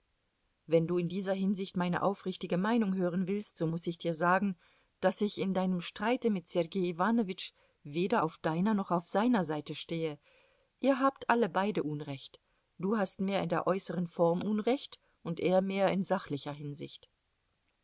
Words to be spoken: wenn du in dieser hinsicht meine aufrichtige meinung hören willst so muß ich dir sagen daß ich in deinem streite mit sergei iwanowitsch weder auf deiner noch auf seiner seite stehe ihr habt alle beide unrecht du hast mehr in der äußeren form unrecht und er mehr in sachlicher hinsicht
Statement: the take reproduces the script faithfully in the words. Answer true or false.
true